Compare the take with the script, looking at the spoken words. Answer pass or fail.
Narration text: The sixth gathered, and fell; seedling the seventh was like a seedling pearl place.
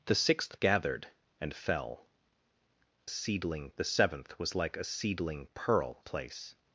pass